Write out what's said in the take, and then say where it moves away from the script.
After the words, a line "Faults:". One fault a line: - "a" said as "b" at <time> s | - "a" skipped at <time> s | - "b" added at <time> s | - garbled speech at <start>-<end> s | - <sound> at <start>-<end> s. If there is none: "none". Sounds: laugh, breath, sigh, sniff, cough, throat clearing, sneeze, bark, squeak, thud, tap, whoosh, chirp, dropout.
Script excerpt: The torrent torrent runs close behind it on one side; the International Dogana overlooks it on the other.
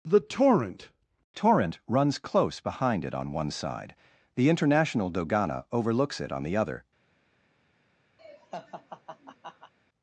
The torrent torrent runs close behind it on one side; the International Dogana overlooks it on the other.
Faults:
- laugh at 8.2-9.7 s